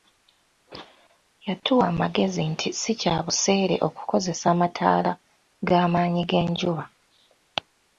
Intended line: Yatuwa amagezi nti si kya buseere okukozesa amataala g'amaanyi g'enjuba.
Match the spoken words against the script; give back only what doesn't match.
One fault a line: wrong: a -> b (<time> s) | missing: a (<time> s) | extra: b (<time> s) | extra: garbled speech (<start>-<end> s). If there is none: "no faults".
no faults